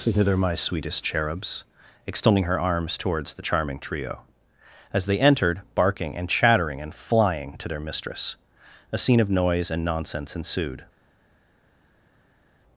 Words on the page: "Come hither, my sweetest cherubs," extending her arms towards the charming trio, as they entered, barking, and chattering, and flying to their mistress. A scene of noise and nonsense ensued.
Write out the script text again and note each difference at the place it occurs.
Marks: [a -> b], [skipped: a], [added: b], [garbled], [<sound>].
[skipped: "Come] hither, my sweetest cherubs," extending her arms towards the charming trio, as they entered, barking, and chattering, and flying to their mistress. A scene of noise and nonsense ensued.